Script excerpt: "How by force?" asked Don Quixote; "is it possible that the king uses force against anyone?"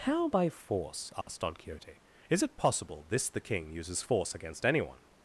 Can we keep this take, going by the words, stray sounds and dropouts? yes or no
no